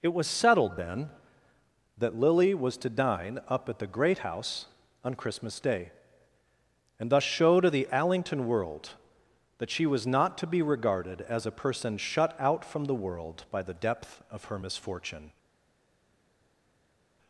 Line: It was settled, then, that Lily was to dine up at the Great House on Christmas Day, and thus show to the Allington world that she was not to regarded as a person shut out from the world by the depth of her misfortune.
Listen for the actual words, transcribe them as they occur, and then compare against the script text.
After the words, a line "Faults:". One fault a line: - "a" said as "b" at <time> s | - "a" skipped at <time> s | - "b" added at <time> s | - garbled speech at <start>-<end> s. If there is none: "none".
It was settled, then, that Lily was to dine up at the Great House on Christmas Day, and thus show to the Allington world that she was not to be regarded as a person shut out from the world by the depth of her misfortune.
Faults:
- "be" added at 10.5 s